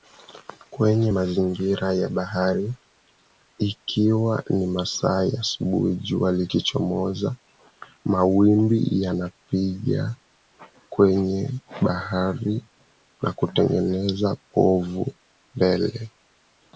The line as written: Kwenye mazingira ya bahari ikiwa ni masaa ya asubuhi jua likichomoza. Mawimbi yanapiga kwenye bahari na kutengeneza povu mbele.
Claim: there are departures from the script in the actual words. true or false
false